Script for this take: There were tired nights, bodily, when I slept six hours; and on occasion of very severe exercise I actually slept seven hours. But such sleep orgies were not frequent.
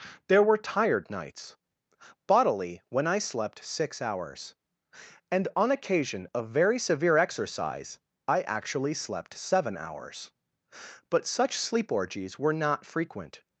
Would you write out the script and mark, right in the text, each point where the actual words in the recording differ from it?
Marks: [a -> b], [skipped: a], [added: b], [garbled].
There were tired nights, bodily, when I slept six hours; and on occasion of very severe exercise I actually slept seven hours. But such sleep orgies were not frequent.